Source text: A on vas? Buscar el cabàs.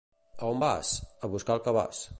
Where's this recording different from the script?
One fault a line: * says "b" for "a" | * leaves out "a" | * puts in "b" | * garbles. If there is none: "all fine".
* puts in "A"